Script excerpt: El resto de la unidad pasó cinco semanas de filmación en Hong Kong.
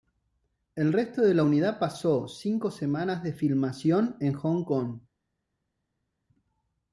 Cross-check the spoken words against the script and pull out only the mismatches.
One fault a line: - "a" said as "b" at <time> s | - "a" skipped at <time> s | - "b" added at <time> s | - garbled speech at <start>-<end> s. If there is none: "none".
none